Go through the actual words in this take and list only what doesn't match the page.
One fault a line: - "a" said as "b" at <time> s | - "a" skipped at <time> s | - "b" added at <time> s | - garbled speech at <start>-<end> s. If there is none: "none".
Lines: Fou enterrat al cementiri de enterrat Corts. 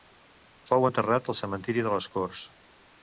- "enterrat" said as "les" at 2.0 s